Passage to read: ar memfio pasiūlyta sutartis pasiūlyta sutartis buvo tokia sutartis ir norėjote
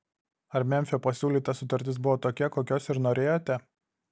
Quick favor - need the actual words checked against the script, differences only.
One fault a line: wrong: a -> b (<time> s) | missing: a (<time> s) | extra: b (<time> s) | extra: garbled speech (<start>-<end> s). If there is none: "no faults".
missing: pasiūlyta sutartis (2.0 s)
wrong: sutartis -> kokios (2.6 s)